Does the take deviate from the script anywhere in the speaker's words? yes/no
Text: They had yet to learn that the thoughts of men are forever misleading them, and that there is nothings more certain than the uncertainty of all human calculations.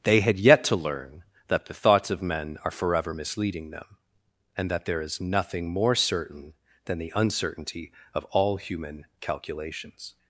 yes